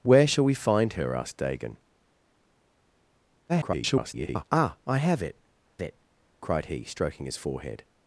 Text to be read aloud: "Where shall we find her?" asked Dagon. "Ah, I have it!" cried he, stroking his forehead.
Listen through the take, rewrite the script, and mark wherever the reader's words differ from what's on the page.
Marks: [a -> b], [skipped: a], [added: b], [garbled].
"Where shall we find her?" asked Dagon. [garbled] "Ah, I have it!" [added: it] cried he, stroking his forehead.